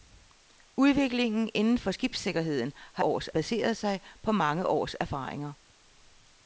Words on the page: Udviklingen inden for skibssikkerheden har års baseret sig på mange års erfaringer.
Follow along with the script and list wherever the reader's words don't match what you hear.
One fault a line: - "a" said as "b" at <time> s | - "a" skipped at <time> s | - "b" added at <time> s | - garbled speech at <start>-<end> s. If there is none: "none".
none